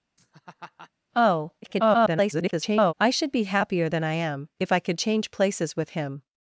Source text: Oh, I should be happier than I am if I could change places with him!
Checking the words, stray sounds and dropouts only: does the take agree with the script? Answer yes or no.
no